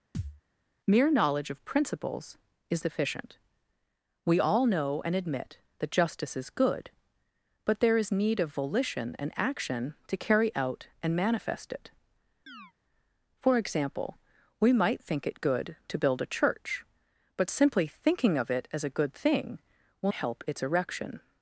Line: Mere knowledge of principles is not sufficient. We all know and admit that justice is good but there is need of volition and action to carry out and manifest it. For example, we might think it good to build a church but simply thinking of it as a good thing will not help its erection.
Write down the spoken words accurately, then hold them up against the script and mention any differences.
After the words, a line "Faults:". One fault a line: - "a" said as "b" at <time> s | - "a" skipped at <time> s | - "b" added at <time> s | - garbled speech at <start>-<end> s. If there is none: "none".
Mere knowledge of principles is sufficient. We all know and admit that justice is good but there is need of volition and action to carry out and manifest it. For example, we might think it good to build a church but simply thinking of it as a good thing will help its erection.
Faults:
- "not" skipped at 2.8 s
- "not" skipped at 20.1 s